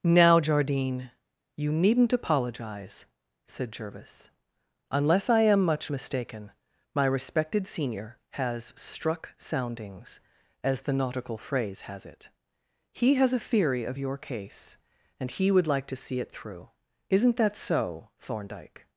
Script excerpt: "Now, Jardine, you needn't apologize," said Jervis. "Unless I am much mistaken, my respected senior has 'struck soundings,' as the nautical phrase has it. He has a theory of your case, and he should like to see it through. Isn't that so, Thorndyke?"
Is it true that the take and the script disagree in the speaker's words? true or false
true